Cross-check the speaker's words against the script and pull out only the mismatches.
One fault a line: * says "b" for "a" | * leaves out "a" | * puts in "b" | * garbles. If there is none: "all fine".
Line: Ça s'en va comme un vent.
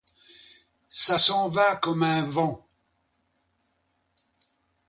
all fine